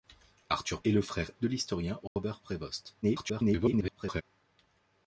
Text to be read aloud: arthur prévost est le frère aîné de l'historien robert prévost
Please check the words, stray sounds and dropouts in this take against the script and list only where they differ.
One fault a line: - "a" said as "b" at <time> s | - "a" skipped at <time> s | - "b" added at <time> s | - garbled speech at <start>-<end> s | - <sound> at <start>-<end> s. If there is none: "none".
- "prévost" skipped at 0.8 s
- "aîné" skipped at 1.3 s
- dropout at 2.1-2.2 s
- garbled speech at 3.0-4.2 s